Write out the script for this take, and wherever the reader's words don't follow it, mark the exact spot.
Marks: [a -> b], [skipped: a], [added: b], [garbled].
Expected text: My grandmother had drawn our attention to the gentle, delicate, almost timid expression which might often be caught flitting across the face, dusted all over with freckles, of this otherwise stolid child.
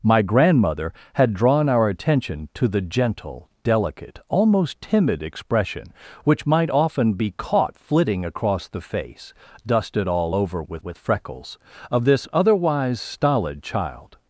My grandmother had drawn our attention to the gentle, delicate, almost timid expression which might often be caught flitting across the face, dusted all over with [added: with] freckles, of this otherwise stolid child.